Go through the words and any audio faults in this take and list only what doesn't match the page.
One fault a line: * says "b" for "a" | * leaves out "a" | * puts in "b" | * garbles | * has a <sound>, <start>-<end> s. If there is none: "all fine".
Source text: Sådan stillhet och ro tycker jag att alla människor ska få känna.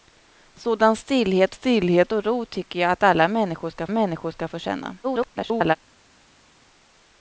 * puts in "stillhet"
* puts in "människor ska"
* garbles